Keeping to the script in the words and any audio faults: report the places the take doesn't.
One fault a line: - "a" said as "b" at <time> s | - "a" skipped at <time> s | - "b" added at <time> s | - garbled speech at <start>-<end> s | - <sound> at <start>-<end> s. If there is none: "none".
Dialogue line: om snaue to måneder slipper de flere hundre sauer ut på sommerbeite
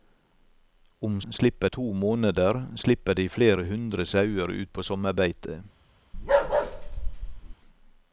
- "snaue" said as "slipper" at 1.3 s
- bark at 6.1-7.5 s